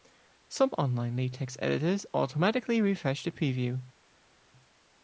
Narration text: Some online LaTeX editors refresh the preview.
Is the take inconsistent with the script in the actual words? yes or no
yes